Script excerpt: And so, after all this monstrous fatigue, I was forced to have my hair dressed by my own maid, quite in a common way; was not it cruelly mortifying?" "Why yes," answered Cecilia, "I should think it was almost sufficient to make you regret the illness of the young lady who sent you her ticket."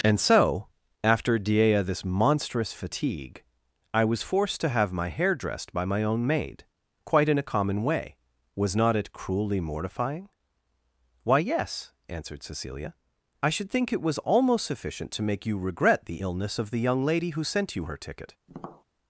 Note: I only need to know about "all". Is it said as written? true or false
false